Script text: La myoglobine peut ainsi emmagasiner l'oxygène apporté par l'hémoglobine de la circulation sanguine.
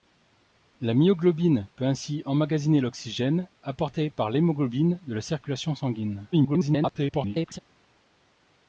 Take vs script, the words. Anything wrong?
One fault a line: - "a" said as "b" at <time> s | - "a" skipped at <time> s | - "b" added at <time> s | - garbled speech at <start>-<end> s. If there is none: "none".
- garbled speech at 6.3-7.6 s